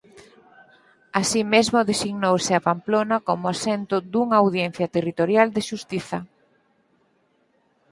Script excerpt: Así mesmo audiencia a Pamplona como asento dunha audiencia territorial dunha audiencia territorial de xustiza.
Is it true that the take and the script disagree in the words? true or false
true